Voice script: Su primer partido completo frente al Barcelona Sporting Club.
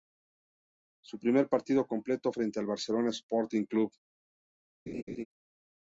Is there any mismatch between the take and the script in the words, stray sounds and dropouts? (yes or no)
yes